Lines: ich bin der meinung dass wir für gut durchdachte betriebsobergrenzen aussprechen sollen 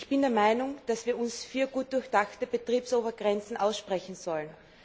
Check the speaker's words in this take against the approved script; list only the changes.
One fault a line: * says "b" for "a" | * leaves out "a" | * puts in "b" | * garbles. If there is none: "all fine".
* puts in "uns"